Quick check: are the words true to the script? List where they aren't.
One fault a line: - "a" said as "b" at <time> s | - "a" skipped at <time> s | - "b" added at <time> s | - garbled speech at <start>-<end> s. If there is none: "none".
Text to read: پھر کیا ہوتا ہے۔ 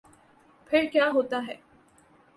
none